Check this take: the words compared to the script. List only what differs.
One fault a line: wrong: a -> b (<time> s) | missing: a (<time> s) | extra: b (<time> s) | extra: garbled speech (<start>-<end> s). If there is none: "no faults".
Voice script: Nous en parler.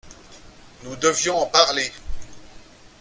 extra: devions (0.9 s)